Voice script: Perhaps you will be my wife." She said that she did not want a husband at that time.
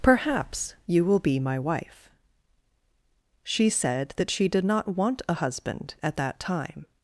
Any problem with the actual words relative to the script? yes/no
no